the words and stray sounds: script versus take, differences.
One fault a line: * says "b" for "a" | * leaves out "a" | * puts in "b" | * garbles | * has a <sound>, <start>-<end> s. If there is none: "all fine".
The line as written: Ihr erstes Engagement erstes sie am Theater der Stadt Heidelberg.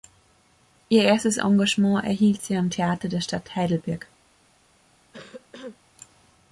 * says "erhielt" for "erstes"
* has a cough, 5.1-5.8 s